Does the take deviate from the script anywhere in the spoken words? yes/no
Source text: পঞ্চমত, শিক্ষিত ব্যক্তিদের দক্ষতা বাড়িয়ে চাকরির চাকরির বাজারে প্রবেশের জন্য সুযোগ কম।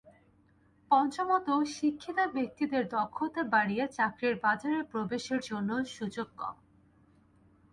yes